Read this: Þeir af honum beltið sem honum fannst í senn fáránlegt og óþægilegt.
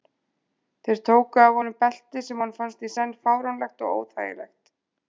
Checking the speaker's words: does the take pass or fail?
fail